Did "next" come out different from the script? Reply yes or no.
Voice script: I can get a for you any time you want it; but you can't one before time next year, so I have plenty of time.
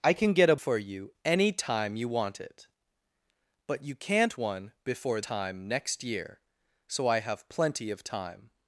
no